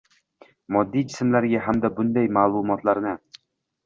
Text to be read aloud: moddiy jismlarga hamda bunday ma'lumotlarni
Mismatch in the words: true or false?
false